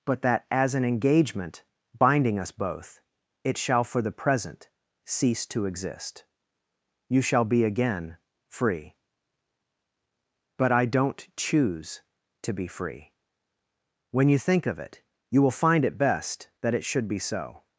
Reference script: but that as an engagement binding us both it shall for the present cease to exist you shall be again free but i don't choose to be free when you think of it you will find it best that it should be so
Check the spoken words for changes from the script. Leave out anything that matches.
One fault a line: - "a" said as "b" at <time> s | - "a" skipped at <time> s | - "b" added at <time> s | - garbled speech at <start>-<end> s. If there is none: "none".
none